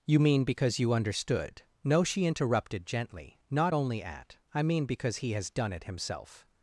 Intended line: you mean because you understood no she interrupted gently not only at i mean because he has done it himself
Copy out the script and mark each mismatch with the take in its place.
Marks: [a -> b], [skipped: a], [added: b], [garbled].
you mean because you understood no she interrupted gently not only at i mean because he has done it himself